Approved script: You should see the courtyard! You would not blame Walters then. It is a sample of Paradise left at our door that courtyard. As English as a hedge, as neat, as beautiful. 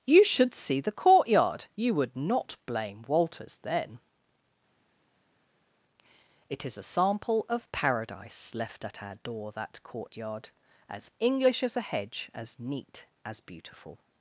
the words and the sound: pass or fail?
pass